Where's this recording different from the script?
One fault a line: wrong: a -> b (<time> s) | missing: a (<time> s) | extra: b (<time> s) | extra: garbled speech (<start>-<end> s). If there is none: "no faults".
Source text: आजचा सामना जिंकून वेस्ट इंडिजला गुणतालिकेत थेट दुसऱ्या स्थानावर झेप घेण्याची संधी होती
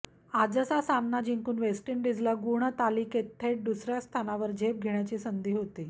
no faults